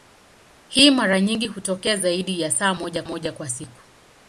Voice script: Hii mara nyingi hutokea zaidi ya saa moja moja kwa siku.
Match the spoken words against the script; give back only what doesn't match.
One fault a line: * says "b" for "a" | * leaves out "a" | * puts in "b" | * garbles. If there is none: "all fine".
all fine